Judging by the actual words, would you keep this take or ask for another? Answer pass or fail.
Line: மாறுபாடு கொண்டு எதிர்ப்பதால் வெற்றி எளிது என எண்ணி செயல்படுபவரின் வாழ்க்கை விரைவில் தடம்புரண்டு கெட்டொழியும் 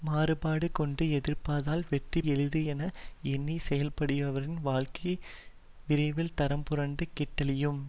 pass